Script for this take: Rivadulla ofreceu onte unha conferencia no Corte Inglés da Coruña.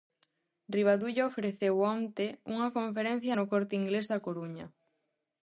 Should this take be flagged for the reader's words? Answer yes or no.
no